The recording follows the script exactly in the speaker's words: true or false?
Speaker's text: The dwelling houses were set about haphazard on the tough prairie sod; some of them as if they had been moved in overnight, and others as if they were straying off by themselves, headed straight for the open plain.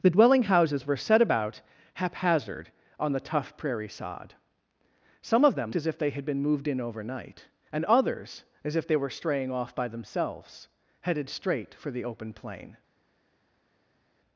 true